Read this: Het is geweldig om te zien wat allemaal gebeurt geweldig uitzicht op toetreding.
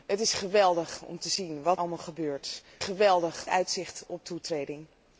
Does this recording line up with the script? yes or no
yes